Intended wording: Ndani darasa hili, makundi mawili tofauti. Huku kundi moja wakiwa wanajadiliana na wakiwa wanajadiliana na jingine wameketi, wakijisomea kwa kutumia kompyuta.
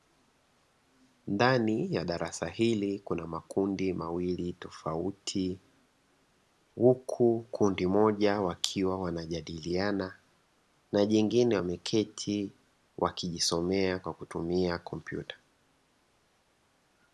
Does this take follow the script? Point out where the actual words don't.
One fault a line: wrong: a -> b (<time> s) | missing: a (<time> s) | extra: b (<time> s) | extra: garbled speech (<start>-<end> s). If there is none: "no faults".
extra: ya (1.9 s)
extra: kuna (3.0 s)
missing: wakiwa wanajadiliana na (11.1 s)